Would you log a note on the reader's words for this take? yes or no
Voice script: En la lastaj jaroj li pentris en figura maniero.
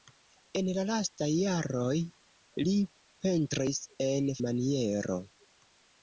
yes